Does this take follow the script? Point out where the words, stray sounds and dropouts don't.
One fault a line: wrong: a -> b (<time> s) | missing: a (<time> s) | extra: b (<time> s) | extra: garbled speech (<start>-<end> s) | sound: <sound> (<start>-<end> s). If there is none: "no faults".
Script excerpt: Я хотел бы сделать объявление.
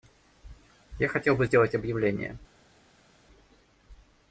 no faults